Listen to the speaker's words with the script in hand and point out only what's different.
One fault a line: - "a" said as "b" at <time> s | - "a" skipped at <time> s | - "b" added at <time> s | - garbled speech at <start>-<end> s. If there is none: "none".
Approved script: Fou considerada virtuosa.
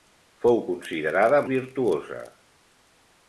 none